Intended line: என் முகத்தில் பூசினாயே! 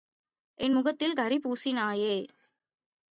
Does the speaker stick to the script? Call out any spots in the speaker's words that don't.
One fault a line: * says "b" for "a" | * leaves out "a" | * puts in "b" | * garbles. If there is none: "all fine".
* puts in "கரி"